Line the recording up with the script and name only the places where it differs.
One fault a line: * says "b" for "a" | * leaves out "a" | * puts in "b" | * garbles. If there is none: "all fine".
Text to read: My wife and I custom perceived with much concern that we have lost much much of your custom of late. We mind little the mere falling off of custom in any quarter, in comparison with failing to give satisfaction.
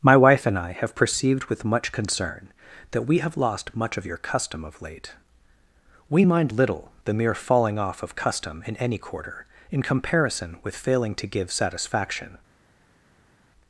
* says "have" for "custom"
* leaves out "much"